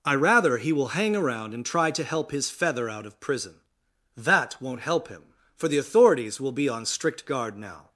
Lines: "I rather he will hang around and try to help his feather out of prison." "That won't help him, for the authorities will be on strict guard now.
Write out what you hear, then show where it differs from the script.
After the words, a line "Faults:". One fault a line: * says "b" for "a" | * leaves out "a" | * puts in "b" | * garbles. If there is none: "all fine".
"I rather he will hang around and try to help his feather out of prison." "That won't help him, for the authorities will be on strict guard now.
Faults:
all fine